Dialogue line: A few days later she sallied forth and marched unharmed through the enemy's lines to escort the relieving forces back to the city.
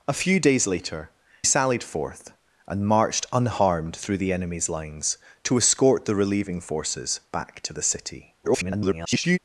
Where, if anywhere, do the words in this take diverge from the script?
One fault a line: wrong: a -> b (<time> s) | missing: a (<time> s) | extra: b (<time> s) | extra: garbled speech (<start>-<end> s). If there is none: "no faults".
missing: she (1.1 s)
extra: garbled speech (8.4-9.4 s)